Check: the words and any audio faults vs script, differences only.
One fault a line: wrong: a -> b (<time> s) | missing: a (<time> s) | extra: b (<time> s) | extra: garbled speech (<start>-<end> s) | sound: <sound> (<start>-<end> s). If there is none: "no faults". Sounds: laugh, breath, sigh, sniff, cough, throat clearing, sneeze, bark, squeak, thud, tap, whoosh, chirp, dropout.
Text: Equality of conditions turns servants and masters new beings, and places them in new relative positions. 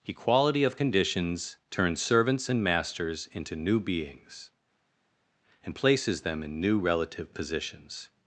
extra: into (3.3 s)